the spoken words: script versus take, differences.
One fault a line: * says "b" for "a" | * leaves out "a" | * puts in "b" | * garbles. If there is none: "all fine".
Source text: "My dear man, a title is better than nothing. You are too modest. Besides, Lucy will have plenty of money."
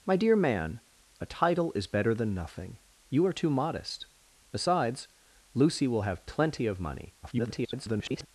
* garbles